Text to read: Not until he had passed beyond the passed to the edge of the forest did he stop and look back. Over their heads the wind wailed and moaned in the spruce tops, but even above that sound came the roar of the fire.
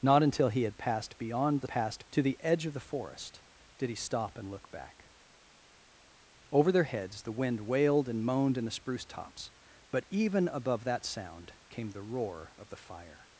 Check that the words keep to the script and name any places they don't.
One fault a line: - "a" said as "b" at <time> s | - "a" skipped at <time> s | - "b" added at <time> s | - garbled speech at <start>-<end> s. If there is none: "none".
none